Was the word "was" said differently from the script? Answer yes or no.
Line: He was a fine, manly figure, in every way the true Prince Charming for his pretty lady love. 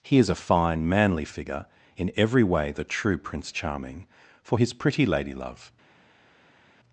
yes